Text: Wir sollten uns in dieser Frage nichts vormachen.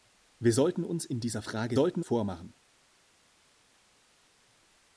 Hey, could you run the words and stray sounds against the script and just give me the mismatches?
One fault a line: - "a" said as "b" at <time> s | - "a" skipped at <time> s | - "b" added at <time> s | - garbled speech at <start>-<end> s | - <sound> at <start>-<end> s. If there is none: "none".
- "nichts" said as "sollten" at 1.7 s